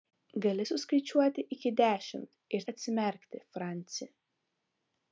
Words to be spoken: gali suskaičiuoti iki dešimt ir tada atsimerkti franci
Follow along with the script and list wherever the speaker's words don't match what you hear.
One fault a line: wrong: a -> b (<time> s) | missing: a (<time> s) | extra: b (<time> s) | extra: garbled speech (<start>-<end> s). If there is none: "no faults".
missing: tada (2.7 s)